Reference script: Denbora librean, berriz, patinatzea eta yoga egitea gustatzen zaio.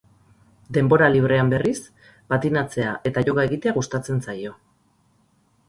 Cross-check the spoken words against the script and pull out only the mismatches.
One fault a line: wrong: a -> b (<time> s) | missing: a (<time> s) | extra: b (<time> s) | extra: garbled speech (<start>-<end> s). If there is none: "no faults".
no faults